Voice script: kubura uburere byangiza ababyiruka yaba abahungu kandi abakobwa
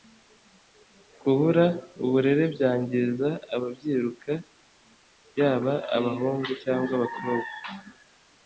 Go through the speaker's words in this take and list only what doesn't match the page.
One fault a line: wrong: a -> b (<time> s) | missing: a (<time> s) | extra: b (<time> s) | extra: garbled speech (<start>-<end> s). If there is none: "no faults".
wrong: kandi -> cyangwa (6.6 s)